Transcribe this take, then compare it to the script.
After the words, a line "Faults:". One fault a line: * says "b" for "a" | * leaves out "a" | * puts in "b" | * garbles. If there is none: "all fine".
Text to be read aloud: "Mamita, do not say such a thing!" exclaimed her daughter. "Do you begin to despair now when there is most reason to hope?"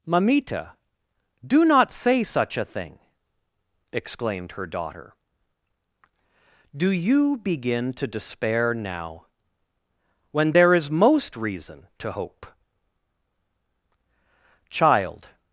"Mamita, do not say such a thing!" exclaimed her daughter. "Do you begin to despair now when there is most reason to hope?" "Child
Faults:
* puts in "Child"